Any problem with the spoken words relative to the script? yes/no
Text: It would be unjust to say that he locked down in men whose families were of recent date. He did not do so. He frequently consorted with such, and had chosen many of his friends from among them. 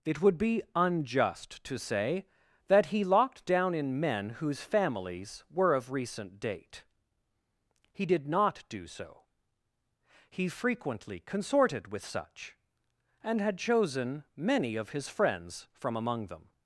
no